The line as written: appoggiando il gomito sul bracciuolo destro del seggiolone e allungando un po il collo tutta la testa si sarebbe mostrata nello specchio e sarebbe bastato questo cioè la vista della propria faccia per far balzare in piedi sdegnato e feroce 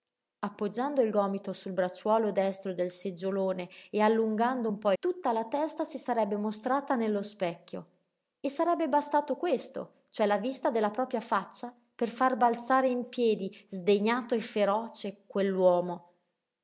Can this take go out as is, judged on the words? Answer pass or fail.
fail